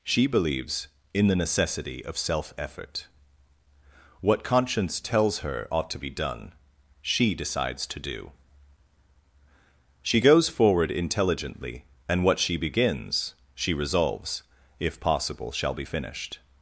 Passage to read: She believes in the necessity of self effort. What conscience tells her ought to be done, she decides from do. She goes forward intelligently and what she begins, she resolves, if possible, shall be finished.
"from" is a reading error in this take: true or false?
true